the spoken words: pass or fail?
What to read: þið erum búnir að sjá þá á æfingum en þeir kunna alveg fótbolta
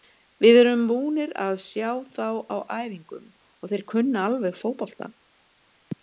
fail